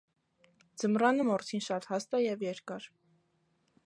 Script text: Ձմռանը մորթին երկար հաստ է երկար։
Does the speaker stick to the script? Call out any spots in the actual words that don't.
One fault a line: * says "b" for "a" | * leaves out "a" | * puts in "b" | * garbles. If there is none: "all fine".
* says "շատ" for "երկար"
* puts in "և"